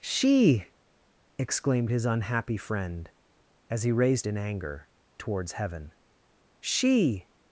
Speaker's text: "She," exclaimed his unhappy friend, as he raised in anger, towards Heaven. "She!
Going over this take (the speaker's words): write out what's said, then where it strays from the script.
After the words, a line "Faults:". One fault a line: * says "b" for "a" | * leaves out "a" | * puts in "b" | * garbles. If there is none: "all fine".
"She," exclaimed his unhappy friend, as he raised in anger, towards Heaven. "She!
Faults:
all fine